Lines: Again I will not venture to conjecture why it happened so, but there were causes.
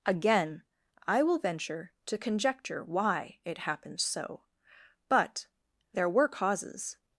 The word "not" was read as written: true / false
false